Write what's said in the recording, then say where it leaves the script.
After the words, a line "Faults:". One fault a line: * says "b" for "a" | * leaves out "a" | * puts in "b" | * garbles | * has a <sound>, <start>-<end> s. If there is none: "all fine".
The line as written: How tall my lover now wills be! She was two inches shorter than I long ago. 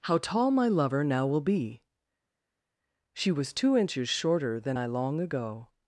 How tall my lover now will be! She was two inches shorter than I long ago.
Faults:
* says "will" for "wills"